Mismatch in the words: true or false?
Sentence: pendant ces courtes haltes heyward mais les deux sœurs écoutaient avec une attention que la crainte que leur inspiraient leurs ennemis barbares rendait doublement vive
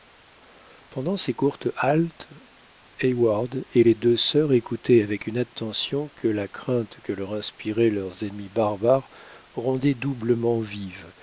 true